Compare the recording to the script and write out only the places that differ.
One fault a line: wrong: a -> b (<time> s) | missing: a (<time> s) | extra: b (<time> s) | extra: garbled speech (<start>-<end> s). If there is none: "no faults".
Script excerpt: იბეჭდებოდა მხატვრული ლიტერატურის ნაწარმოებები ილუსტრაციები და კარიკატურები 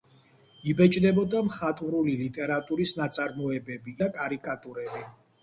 missing: ილუსტრაციები (4.0 s)